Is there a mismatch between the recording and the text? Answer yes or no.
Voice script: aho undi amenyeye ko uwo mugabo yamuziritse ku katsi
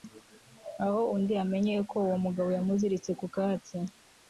no